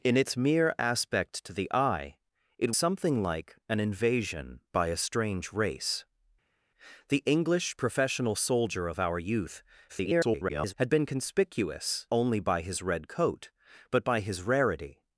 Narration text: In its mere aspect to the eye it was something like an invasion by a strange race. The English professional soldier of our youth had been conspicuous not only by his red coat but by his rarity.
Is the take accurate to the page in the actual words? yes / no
no